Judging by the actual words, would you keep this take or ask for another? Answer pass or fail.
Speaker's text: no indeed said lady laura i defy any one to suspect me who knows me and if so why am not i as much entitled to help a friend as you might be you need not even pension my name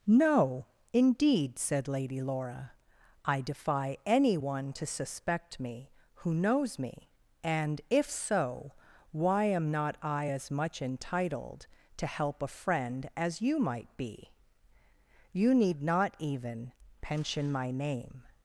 pass